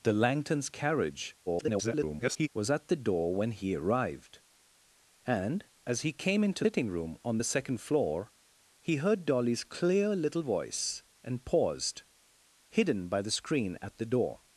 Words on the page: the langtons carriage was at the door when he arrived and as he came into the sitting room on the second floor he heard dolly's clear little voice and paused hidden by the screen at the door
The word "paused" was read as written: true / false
true